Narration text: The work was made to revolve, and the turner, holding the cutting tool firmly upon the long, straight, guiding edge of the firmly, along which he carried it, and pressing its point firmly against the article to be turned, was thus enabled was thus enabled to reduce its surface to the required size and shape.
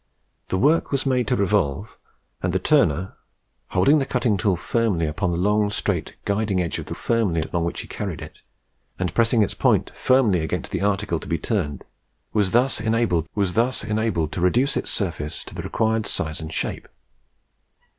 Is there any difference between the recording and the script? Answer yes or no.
no